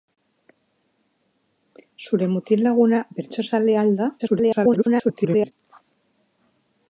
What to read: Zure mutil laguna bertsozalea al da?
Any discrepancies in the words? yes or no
yes